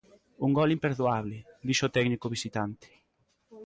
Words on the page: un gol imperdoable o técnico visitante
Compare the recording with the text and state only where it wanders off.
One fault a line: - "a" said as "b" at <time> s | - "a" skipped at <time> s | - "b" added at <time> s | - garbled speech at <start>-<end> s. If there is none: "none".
- "dixo" added at 1.7 s